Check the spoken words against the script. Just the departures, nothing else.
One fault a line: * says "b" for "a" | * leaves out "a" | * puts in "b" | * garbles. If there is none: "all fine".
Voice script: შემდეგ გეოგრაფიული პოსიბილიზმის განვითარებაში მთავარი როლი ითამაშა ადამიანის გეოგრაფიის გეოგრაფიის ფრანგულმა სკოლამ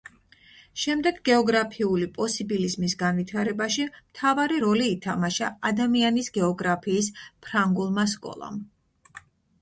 * leaves out "გეოგრაფიის"